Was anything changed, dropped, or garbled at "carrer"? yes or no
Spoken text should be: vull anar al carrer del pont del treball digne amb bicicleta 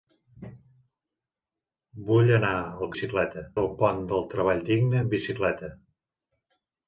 yes